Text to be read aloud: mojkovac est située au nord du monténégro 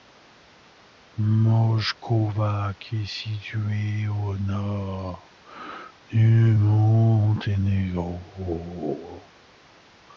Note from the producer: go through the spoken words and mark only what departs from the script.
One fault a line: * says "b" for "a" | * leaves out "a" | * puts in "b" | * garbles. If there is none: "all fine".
all fine